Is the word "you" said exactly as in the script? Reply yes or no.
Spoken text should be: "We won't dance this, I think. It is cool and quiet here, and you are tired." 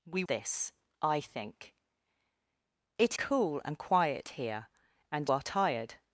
no